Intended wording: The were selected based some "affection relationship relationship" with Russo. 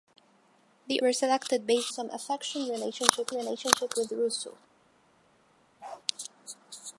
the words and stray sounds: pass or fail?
fail